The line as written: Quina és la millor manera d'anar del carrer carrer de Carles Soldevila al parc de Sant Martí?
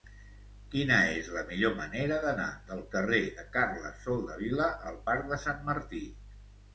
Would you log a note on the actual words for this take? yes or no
yes